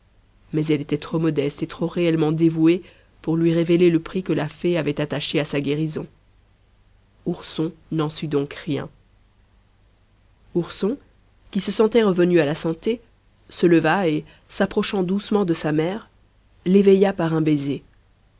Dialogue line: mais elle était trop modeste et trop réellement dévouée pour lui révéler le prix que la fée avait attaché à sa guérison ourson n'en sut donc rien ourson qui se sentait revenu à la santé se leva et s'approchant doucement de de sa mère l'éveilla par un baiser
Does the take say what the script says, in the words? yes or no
no